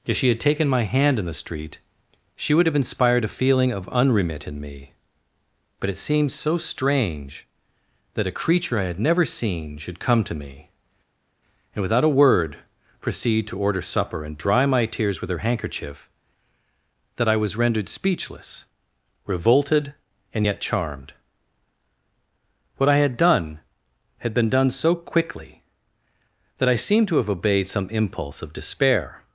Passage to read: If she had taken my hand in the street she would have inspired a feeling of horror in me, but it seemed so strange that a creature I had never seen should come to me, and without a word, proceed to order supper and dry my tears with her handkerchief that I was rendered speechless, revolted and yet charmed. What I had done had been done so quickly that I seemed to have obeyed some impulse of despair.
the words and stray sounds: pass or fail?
fail